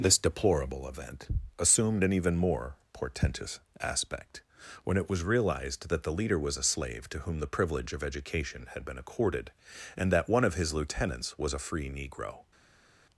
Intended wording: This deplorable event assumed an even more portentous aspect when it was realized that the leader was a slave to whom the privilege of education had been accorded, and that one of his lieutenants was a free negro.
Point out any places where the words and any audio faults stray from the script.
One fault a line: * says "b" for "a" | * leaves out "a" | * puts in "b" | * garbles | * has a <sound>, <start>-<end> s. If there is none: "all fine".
all fine